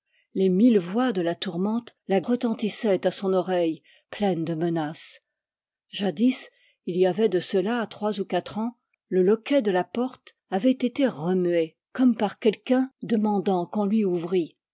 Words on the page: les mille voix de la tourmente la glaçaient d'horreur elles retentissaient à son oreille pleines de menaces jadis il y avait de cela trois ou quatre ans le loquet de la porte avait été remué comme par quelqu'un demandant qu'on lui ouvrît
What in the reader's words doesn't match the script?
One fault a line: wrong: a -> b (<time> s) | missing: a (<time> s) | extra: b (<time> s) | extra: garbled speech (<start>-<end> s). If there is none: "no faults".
missing: glaçaient d'horreur elles (2.2 s)